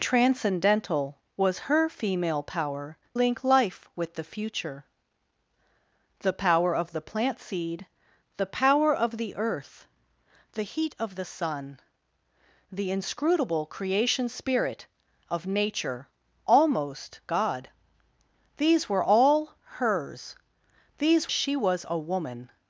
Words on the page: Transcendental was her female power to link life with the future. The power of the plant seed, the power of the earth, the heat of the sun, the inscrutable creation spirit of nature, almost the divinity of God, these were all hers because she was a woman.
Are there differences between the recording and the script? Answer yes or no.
yes